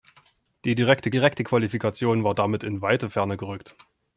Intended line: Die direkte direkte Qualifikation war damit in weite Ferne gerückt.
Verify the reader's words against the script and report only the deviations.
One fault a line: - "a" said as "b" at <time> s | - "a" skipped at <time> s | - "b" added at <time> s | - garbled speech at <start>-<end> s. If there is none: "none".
none